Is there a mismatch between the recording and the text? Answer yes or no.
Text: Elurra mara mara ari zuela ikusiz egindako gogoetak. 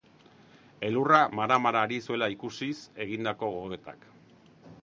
no